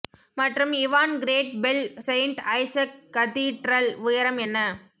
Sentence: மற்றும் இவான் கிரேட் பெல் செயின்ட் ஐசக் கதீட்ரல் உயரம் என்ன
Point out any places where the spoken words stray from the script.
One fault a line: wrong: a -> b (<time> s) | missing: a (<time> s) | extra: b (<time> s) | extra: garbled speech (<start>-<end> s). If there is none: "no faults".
no faults